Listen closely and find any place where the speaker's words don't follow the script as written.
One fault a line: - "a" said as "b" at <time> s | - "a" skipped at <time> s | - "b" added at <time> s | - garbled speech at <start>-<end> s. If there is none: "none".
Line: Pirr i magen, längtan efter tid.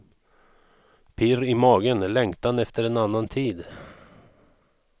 - "en annan" added at 2.8 s